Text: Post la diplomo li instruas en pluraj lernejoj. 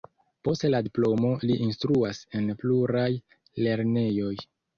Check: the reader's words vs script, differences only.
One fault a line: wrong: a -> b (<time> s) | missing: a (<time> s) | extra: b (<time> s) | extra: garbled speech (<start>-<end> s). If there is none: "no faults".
no faults